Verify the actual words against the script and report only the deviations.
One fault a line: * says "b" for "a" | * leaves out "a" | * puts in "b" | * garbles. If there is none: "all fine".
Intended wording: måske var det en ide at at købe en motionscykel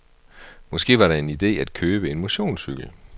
* leaves out "at"